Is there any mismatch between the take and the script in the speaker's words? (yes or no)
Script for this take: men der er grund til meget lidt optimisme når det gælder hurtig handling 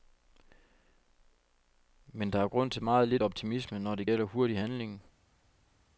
no